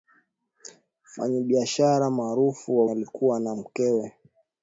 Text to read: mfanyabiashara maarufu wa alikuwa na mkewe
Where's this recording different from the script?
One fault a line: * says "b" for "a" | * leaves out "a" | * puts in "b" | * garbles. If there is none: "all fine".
all fine